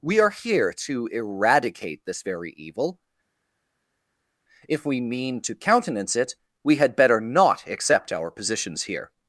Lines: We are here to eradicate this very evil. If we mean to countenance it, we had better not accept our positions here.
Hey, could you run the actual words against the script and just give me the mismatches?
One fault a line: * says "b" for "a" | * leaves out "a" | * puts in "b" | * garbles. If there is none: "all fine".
all fine